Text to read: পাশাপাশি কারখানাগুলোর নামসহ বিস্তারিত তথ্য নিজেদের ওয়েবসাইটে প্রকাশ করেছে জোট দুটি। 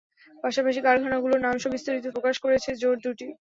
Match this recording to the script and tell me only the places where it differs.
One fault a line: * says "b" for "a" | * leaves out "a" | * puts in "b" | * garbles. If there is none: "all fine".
* leaves out "তথ্য নিজেদের ওয়েবসাইটে"